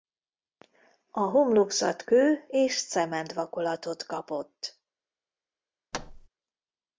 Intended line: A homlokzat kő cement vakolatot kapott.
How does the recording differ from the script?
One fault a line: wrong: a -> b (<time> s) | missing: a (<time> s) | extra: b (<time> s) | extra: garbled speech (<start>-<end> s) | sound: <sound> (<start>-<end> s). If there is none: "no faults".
extra: és (2.5 s)
sound: thud (5.9-6.3 s)